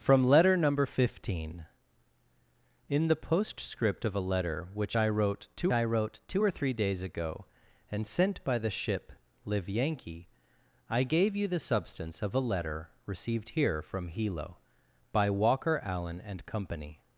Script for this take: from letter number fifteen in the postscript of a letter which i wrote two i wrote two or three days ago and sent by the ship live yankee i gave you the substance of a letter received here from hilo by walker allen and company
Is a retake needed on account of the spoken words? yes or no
no